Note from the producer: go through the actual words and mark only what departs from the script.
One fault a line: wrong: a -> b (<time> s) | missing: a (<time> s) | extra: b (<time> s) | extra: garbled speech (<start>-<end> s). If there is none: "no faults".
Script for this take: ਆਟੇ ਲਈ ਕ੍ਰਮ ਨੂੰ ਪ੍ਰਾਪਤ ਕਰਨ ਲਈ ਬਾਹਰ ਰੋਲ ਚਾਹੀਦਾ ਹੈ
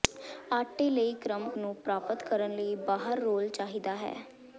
no faults